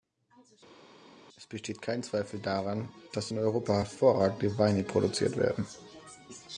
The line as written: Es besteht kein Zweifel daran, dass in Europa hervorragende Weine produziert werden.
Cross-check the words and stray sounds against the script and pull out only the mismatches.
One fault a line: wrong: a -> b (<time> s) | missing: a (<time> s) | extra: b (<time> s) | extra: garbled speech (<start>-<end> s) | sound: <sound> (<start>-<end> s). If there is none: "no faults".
no faults